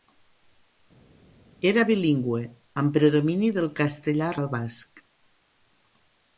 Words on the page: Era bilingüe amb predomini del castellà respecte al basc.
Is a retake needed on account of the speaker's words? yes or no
yes